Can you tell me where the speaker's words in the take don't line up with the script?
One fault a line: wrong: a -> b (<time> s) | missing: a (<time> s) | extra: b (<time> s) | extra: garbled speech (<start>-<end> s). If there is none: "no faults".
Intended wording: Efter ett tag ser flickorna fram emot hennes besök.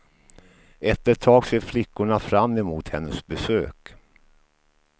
no faults